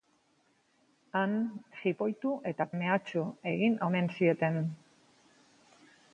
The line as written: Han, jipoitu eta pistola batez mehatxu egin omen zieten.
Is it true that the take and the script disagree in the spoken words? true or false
true